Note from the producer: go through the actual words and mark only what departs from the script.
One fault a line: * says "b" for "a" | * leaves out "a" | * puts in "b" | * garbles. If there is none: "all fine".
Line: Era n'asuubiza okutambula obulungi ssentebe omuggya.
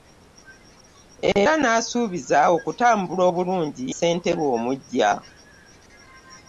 all fine